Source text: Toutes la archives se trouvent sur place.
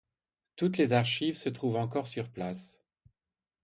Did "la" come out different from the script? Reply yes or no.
yes